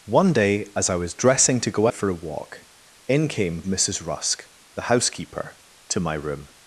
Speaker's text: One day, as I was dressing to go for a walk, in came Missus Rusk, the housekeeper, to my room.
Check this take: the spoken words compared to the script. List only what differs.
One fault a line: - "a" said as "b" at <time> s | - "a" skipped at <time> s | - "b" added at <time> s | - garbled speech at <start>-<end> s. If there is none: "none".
none